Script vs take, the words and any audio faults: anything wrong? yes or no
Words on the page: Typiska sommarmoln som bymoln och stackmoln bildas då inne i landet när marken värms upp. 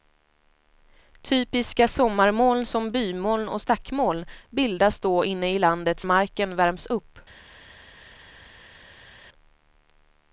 yes